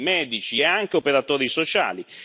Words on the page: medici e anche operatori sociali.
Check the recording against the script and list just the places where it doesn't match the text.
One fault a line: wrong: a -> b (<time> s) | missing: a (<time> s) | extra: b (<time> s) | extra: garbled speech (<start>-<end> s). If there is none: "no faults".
no faults